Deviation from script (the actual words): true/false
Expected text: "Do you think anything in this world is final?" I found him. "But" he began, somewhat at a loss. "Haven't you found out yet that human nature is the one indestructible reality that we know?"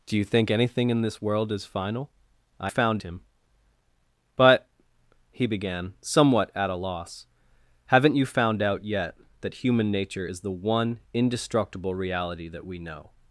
false